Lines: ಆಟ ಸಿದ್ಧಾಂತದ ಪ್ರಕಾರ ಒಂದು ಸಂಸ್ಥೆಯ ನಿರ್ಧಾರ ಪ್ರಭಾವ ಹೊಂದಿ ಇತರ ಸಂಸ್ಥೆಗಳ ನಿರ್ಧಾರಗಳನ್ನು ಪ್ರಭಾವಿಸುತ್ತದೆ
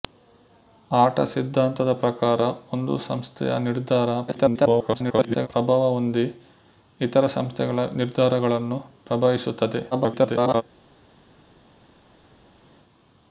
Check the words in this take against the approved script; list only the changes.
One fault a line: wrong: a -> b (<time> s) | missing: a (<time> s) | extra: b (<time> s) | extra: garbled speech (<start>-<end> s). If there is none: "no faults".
extra: garbled speech (4.3-5.5 s)
extra: garbled speech (9.9-10.6 s)